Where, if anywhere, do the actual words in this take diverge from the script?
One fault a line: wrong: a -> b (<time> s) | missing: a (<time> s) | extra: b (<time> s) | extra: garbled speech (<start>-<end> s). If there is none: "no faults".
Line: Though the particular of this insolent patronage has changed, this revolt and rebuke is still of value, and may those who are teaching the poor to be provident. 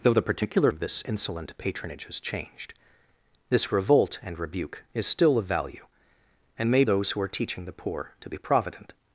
no faults